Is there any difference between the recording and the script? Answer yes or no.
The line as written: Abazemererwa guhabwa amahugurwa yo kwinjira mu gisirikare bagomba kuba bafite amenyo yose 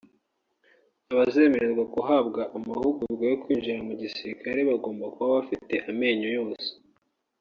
no